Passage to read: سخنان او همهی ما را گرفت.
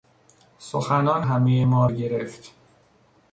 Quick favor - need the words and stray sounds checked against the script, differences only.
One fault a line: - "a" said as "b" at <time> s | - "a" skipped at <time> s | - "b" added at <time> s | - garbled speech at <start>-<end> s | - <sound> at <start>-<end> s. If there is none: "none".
- "او" skipped at 1.2 s
- "را" skipped at 1.9 s